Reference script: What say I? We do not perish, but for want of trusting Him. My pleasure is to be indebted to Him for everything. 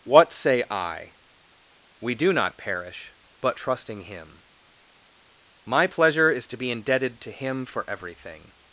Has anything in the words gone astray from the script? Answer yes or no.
yes